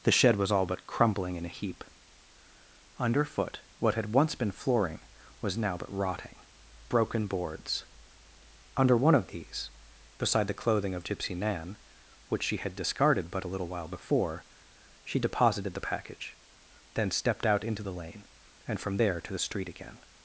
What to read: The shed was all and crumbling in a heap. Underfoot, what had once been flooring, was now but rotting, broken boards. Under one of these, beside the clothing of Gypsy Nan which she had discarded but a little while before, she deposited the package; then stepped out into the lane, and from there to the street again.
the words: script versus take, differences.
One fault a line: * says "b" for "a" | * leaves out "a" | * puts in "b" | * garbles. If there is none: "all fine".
* says "but" for "and"